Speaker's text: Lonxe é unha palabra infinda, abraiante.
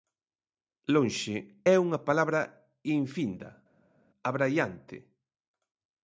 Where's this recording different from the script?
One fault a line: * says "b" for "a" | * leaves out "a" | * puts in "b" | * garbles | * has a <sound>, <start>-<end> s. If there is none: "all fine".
all fine